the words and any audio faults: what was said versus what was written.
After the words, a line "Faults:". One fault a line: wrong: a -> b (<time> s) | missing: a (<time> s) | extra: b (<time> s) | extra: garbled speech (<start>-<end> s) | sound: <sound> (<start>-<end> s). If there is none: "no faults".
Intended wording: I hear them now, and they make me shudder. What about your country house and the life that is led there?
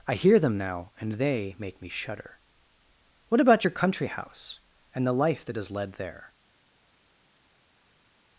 I hear them now, and they make me shudder. What about your country house and the life that is led there?
Faults:
no faults